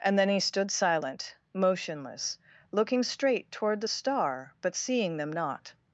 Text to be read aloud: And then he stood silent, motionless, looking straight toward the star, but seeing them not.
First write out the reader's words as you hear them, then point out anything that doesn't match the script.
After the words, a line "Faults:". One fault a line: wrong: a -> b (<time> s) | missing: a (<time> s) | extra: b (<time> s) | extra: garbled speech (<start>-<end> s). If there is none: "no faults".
And then he stood silent, motionless, looking straight toward the star, but seeing them not.
Faults:
no faults